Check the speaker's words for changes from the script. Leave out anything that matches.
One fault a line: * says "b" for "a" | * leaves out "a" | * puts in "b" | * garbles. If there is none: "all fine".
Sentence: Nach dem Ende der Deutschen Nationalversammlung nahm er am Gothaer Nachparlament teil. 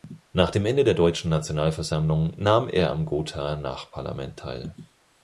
all fine